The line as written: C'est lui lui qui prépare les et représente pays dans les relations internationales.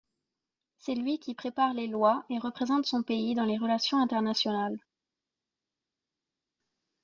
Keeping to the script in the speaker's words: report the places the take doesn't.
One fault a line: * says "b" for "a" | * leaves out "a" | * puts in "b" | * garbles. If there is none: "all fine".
* leaves out "lui"
* puts in "lois"
* puts in "son"